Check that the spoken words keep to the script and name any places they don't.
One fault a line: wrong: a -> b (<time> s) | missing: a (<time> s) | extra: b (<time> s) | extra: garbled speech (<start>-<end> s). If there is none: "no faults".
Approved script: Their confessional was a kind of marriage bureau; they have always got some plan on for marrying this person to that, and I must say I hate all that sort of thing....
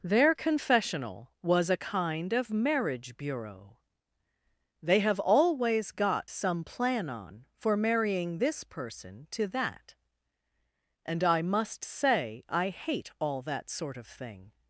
no faults